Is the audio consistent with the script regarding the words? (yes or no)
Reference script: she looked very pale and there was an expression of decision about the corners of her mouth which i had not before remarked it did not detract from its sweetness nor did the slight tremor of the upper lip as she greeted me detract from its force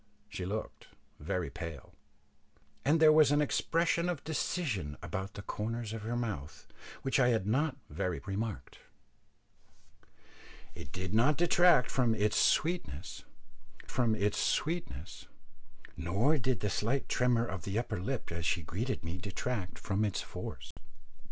no